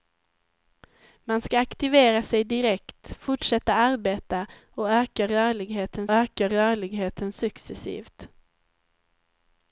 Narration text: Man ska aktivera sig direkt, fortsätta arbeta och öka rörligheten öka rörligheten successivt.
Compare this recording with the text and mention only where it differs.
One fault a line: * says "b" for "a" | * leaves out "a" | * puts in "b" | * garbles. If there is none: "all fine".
all fine